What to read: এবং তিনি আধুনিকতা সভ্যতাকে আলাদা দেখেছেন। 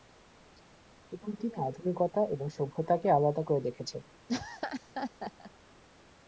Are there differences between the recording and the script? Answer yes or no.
yes